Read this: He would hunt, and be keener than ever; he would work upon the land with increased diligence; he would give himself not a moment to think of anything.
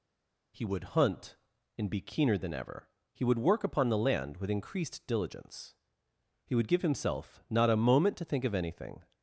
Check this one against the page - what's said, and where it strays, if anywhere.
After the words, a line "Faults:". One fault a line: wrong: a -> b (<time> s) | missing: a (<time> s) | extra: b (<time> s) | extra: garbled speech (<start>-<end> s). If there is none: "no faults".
He would hunt, and be keener than ever; he would work upon the land with increased diligence; he would give himself not a moment to think of anything.
Faults:
no faults